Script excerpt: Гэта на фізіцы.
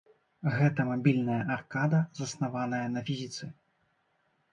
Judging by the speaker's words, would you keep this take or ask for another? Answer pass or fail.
fail